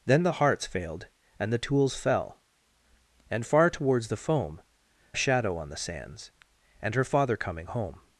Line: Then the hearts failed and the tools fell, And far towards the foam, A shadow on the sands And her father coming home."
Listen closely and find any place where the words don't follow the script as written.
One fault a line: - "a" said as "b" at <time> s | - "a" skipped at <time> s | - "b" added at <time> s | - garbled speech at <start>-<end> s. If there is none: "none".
none